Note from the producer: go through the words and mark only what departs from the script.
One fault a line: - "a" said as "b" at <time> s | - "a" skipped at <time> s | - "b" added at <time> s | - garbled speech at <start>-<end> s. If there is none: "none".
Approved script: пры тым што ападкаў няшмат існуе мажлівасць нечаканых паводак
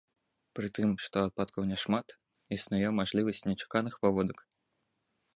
none